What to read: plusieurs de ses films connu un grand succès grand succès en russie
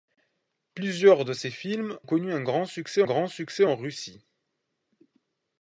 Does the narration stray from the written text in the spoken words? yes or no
no